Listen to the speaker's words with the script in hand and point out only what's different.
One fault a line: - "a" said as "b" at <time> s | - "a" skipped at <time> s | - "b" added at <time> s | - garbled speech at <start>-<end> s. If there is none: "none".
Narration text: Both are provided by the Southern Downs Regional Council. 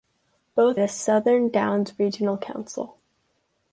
- "are provided by" skipped at 0.8 s